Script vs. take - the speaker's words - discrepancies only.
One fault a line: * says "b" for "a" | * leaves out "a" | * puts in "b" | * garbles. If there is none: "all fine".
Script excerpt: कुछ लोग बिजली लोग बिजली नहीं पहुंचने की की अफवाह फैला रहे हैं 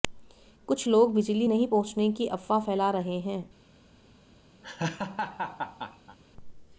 * leaves out "लोग बिजली"
* leaves out "की"